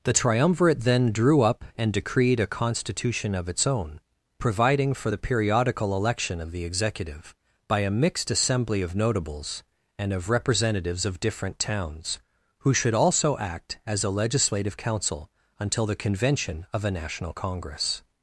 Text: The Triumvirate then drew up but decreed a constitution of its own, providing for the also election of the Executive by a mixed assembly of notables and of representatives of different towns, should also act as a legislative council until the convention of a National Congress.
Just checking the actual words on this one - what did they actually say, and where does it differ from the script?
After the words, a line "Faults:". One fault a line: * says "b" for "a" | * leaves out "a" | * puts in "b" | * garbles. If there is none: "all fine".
The Triumvirate then drew up and decreed a constitution of its own, providing for the periodical election of the Executive by a mixed assembly of notables and of representatives of different towns, who should also act as a legislative council until the convention of a National Congress.
Faults:
* says "and" for "but"
* says "periodical" for "also"
* puts in "who"